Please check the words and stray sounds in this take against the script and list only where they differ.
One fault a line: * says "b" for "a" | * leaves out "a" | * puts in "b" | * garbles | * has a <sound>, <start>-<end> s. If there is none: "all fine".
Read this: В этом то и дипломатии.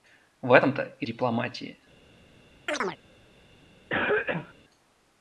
* has a chirp, 2.7-3.0 s
* has a cough, 3.9-4.5 s